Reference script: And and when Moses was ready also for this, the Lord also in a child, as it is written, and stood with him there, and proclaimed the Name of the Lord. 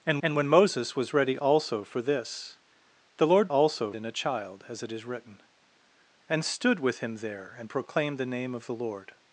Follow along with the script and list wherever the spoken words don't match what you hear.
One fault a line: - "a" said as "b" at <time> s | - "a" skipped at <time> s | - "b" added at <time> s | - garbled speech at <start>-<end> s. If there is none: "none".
none